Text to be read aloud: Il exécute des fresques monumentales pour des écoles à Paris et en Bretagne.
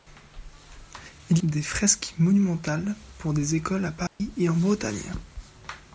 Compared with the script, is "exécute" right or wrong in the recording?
wrong